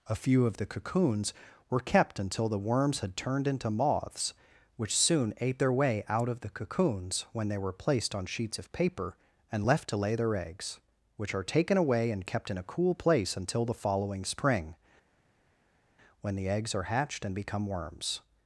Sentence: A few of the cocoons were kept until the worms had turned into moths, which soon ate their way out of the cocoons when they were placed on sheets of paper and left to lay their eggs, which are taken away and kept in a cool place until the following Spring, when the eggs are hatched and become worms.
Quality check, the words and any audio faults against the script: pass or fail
pass